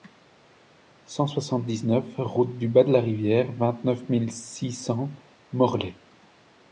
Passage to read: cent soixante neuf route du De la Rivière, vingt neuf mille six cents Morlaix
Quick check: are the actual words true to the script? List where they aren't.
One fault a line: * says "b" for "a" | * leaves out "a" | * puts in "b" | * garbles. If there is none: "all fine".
* puts in "dix"
* puts in "Bas"